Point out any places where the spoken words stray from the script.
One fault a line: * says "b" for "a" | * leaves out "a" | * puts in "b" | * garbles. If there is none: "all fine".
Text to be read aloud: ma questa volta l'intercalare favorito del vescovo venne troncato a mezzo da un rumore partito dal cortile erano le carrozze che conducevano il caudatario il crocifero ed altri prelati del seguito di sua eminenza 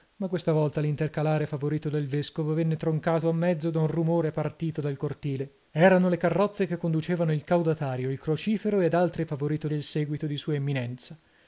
* says "favorito" for "prelati"